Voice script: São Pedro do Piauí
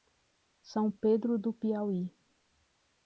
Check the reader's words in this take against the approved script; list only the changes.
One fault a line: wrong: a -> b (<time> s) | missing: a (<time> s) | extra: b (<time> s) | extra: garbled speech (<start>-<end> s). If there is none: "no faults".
no faults